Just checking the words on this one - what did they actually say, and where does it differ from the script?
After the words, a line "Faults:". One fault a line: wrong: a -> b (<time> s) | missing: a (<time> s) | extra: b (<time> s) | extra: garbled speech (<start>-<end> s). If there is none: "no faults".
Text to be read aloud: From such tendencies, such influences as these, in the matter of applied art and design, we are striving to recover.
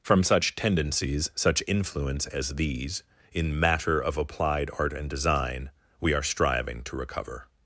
From such tendencies, such influence as these, in matter of applied art and design, we are striving to recover.
Faults:
wrong: influences -> influence (1.7 s)
missing: the (3.6 s)